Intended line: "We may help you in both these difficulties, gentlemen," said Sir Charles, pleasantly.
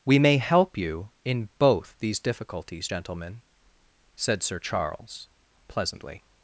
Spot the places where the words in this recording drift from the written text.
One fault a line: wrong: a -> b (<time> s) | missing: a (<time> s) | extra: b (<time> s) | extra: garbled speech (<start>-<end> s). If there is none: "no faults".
no faults